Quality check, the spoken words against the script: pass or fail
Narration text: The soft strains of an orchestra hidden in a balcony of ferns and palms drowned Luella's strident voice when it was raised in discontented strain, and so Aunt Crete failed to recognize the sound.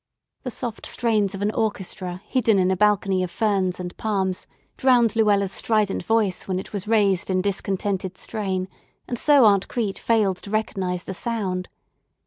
pass